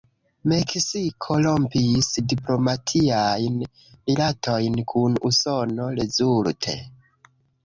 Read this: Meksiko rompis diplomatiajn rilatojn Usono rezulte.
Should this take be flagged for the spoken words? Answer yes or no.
yes